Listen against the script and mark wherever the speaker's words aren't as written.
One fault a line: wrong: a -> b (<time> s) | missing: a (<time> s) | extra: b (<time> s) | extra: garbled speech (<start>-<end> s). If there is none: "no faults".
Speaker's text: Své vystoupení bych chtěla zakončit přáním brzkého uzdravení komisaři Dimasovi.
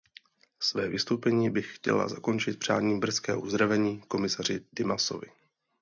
no faults